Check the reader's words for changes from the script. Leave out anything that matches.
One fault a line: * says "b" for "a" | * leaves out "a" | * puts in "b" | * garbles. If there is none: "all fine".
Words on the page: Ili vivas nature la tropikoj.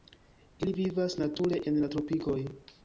* puts in "en"